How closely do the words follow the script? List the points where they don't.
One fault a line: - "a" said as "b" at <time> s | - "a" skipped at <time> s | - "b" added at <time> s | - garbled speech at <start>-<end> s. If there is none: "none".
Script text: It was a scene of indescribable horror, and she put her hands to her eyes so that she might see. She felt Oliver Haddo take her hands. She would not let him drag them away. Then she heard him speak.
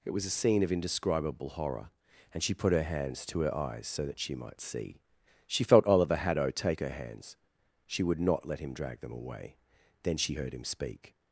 none